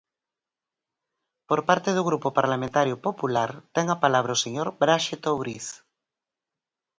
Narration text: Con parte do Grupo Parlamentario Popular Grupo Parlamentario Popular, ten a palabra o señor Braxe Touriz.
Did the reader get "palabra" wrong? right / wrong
right